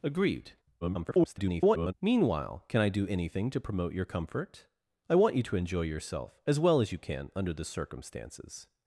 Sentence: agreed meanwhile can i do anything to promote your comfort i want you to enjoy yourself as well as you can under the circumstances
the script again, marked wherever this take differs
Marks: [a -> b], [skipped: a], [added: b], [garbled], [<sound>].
agreed [garbled] meanwhile can i do anything to promote your comfort i want you to enjoy yourself as well as you can under the circumstances